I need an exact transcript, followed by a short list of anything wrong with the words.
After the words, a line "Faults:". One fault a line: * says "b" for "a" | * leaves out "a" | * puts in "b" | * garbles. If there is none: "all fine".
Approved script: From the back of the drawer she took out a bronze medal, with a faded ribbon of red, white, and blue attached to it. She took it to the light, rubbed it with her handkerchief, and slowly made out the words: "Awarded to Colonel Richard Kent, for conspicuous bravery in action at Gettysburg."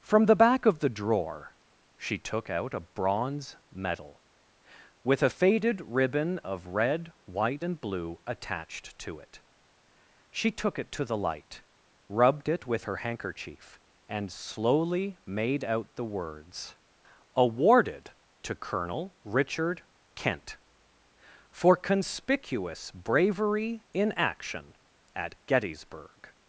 From the back of the drawer she took out a bronze medal, with a faded ribbon of red, white, and blue attached to it. She took it to the light, rubbed it with her handkerchief, and slowly made out the words: "Awarded to Colonel Richard Kent, for conspicuous bravery in action at Gettysburg."
Faults:
all fine